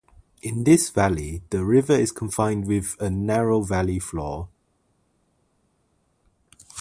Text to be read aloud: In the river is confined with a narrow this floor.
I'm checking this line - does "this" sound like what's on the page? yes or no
no